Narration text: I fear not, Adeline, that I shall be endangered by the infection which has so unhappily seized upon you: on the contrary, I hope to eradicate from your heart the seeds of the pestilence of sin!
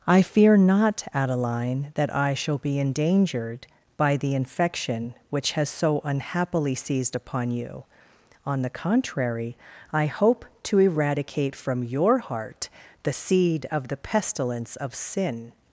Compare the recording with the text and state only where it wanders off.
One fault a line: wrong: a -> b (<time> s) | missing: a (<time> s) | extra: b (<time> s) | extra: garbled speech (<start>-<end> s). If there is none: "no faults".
wrong: seeds -> seed (13.1 s)